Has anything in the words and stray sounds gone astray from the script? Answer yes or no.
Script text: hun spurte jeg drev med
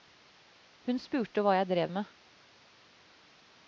yes